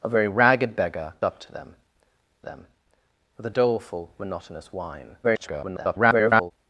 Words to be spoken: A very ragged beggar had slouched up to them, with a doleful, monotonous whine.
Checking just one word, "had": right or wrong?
wrong